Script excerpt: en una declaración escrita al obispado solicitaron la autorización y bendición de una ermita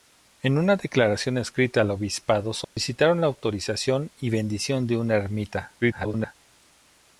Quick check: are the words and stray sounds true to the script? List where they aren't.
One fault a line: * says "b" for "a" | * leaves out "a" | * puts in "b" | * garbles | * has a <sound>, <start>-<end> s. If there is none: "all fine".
* has a dropout, 2.6-2.8 s
* garbles